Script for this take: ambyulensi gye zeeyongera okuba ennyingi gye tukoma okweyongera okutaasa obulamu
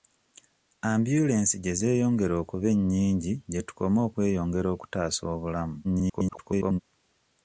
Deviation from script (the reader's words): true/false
true